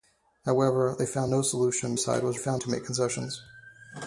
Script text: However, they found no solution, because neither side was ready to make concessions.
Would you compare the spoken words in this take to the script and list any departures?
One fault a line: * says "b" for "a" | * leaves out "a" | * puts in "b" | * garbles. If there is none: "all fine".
* leaves out "because neither"
* says "found" for "ready"